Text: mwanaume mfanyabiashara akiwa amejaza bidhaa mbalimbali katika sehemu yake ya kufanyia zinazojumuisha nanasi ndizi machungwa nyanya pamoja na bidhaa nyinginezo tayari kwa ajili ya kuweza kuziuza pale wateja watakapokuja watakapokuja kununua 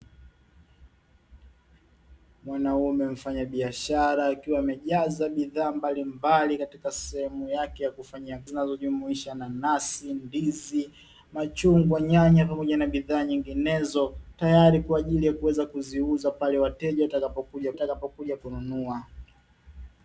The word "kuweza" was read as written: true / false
true